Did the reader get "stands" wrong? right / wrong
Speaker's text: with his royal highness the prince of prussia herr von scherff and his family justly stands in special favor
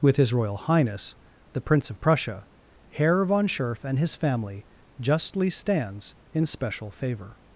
right